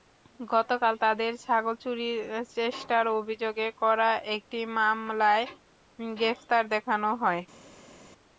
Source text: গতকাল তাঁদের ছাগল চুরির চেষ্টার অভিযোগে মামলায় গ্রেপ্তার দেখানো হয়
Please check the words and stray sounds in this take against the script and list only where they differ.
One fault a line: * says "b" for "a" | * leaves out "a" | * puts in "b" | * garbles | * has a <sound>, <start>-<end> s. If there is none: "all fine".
* puts in "করা একটি"